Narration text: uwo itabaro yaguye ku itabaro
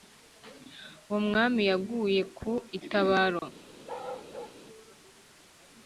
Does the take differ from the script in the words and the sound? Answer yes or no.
yes